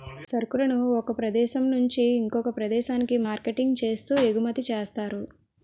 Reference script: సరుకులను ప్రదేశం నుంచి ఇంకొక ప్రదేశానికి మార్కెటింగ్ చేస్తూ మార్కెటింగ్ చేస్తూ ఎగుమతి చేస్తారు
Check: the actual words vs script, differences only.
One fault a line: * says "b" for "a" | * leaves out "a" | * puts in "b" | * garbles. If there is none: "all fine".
* puts in "ఒక"
* leaves out "మార్కెటింగ్ చేస్తూ"